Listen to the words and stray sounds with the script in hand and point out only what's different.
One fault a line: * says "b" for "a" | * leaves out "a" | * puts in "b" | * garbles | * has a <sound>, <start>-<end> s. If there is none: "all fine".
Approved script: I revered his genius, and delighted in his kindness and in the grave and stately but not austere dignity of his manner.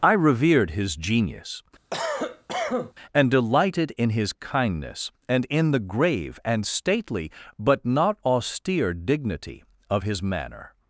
* has a cough, 1.9-2.9 s